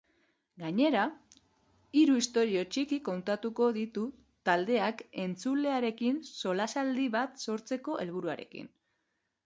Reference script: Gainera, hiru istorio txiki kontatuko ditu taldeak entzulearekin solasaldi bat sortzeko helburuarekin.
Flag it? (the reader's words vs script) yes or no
no